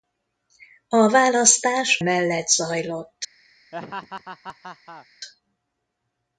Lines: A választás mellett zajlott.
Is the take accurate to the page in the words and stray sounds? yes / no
no